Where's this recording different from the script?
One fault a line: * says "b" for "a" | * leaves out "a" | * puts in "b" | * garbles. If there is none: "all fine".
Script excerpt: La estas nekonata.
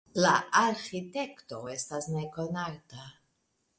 * puts in "arĥitekto"